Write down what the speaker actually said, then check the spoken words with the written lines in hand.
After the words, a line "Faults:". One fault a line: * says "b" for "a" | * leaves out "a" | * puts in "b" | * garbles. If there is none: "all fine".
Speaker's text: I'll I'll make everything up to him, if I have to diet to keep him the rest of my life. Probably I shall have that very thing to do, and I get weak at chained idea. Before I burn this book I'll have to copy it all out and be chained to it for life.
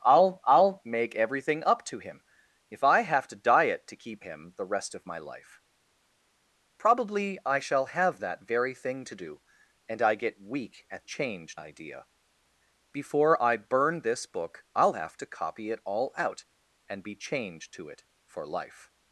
I'll I'll make everything up to him, if I have to diet to keep him the rest of my life. Probably I shall have that very thing to do, and I get weak at chained idea. Before I burn this book I'll have to copy it all out and be chained to it for life.
Faults:
all fine